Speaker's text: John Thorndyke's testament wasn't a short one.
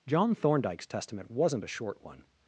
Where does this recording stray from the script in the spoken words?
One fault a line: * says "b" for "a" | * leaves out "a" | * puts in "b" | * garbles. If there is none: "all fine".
all fine